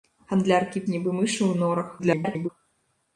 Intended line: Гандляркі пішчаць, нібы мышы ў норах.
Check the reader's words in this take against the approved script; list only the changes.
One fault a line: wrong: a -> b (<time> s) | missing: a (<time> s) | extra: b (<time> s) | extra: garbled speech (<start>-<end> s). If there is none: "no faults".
missing: пішчаць (0.8 s)
extra: garbled speech (2.0-2.5 s)